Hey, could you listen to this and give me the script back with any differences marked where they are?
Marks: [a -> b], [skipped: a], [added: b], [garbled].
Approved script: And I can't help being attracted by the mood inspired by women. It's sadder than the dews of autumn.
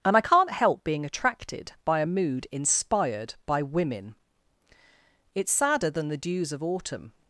And I can't help being attracted by [the -> a] mood inspired by women. It's sadder than the dews of autumn.